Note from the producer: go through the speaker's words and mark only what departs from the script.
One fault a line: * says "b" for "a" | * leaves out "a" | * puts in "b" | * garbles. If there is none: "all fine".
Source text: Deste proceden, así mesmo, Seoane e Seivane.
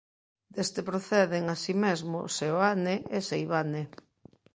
all fine